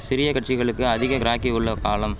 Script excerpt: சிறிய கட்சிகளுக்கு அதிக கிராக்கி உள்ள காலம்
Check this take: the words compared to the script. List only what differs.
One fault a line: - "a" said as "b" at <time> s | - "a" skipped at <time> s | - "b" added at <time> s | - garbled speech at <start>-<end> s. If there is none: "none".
none